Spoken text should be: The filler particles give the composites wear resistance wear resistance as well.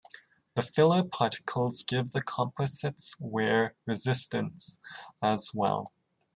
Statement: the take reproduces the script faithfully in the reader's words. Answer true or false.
false